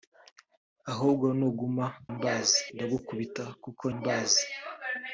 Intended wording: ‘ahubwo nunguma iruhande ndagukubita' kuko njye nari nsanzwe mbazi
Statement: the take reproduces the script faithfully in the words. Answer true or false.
false